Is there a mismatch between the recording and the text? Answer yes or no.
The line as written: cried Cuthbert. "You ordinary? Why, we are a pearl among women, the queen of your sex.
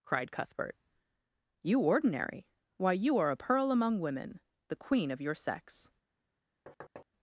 yes